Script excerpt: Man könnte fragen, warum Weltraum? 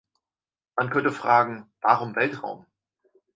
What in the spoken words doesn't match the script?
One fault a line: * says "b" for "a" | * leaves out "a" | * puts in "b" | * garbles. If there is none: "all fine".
all fine